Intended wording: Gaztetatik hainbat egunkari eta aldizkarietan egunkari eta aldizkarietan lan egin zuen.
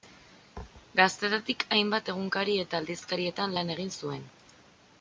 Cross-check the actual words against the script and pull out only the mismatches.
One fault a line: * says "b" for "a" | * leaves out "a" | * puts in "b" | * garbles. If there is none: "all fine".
* leaves out "egunkari eta aldizkarietan"